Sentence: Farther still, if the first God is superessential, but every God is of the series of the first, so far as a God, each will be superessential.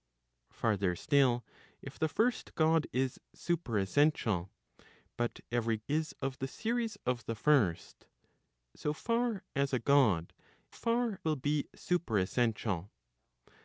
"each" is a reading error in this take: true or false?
true